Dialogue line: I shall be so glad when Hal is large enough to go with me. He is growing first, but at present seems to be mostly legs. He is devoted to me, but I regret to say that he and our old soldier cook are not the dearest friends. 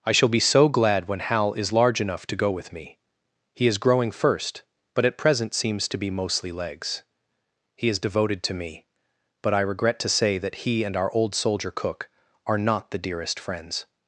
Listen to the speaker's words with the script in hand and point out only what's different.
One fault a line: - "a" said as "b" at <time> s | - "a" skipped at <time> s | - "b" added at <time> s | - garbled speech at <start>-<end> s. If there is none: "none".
none